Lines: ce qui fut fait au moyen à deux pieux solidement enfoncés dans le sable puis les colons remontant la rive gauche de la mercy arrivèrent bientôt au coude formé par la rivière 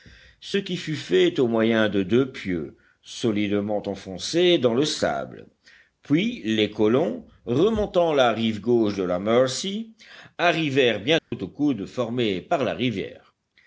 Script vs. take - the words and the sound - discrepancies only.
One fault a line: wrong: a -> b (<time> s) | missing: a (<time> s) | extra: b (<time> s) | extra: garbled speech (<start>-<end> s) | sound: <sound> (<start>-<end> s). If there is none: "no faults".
wrong: à -> de (1.9 s)
sound: dropout (11.2-11.3 s)